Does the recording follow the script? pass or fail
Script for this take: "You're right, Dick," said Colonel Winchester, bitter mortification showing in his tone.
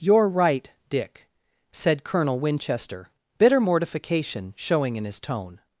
pass